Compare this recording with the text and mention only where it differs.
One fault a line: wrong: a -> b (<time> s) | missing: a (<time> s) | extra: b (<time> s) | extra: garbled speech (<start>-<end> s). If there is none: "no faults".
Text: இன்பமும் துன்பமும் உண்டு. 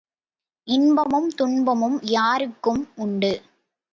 extra: யாருக்கும் (2.1 s)